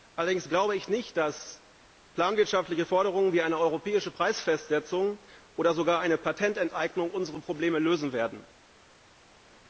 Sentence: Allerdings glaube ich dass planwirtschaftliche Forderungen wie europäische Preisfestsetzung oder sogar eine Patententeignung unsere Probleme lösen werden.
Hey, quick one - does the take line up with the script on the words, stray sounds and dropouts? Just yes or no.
no